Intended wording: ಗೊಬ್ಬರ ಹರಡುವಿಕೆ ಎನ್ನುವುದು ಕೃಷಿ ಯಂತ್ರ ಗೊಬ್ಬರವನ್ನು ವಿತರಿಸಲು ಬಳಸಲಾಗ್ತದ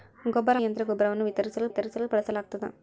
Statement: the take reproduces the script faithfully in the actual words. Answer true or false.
false